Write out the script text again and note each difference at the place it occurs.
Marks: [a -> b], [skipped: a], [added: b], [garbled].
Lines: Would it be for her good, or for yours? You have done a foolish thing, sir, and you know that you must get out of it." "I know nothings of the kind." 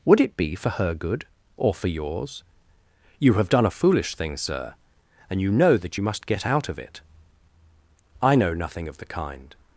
Would it be for her good, or for yours? You have done a foolish thing, sir, and you know that you must get out of it." "I know [nothings -> nothing] of the kind."